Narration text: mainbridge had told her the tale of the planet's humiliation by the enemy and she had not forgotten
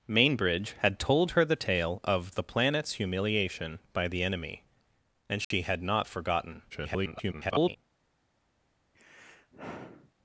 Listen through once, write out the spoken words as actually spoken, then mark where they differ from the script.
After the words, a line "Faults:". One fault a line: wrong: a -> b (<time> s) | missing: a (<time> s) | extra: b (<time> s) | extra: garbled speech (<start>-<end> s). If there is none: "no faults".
mainbridge had told her the tale of the planet's humiliation by the enemy and she had not forgotten [garbled]
Faults:
extra: garbled speech (6.7-7.8 s)